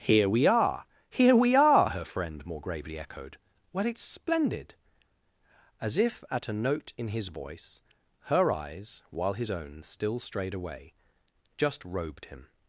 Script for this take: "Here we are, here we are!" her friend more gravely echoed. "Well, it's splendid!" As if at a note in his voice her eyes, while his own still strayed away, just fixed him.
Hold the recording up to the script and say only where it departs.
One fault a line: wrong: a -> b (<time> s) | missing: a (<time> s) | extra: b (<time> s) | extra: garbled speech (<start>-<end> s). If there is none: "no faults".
wrong: fixed -> robed (11.8 s)